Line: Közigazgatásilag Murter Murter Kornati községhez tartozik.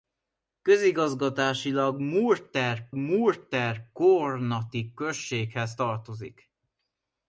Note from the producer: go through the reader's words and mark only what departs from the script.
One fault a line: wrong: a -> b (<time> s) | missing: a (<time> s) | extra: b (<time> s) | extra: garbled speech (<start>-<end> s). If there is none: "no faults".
no faults